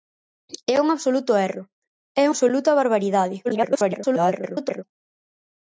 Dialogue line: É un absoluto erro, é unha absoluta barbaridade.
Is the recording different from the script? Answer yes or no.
yes